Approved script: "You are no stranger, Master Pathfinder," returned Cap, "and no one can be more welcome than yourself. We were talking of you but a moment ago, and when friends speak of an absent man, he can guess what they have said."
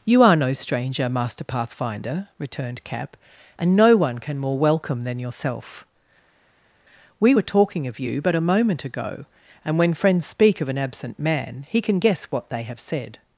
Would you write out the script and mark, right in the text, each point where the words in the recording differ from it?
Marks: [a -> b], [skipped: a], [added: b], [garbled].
"You are no stranger, Master Pathfinder," returned Cap, "and no one can [skipped: be] more welcome than yourself. We were talking of you but a moment ago, and when friends speak of an absent man, he can guess what they have said."